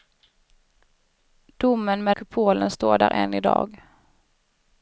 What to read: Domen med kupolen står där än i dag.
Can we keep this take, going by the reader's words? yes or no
yes